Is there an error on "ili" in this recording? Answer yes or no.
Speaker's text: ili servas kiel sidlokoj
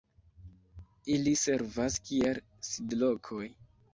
no